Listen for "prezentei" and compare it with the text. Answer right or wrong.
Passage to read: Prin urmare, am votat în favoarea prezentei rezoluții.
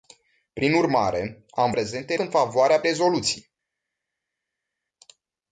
wrong